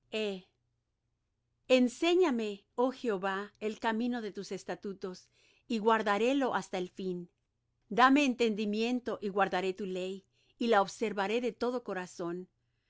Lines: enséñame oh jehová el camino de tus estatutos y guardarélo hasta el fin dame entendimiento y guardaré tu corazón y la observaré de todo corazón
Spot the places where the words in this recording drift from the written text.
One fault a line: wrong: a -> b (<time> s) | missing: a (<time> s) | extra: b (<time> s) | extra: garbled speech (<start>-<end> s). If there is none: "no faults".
wrong: corazón -> ley (9.9 s)